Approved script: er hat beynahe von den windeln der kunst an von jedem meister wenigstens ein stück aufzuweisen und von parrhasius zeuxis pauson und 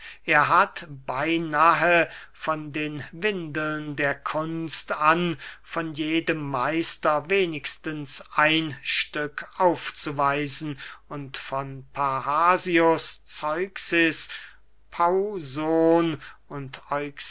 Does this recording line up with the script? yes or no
yes